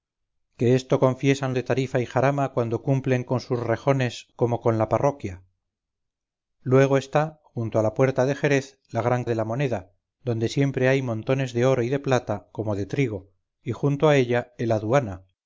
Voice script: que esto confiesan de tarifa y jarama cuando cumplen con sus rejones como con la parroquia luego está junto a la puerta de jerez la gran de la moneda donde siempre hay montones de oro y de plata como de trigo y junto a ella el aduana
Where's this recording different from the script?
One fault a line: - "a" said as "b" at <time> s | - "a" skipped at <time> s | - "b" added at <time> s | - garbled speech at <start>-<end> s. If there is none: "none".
none